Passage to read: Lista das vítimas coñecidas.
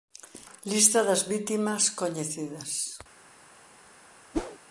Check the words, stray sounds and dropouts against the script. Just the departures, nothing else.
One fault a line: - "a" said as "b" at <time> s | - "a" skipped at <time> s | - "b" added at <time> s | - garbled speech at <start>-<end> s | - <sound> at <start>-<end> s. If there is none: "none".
- whoosh at 4.3-4.6 s